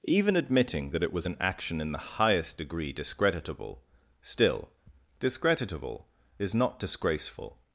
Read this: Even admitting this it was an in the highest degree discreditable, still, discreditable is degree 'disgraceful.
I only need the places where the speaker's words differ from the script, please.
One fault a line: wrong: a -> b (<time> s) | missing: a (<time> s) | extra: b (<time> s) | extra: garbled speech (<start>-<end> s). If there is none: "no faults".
wrong: this -> that (0.9 s)
extra: action (1.4 s)
wrong: degree -> not (6.5 s)